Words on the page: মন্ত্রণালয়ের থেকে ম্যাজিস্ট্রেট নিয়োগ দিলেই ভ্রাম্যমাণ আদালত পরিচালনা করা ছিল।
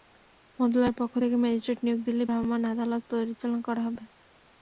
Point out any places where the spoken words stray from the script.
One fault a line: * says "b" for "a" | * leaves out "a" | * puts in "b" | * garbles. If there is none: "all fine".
* puts in "পক্ষ"
* says "হবে" for "ছিল"